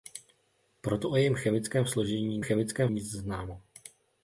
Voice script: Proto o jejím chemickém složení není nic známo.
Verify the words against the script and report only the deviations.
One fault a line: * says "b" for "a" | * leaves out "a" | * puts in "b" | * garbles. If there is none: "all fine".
* says "chemickém" for "není"